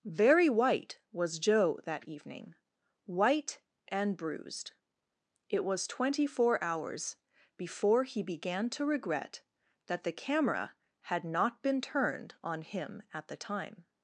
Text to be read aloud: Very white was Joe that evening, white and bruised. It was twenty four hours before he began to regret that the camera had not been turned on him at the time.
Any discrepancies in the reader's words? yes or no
no